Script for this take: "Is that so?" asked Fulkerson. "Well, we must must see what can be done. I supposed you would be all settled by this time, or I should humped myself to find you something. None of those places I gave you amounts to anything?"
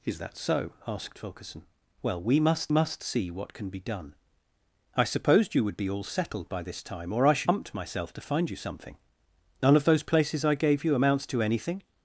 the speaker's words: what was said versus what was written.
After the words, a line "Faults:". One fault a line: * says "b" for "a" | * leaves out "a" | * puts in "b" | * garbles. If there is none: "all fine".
"Is that so?" asked Fulkerson. "Well, we must must see what can be done. I supposed you would be all settled by this time, or I should humped myself to find you something. None of those places I gave you amounts to anything?"
Faults:
all fine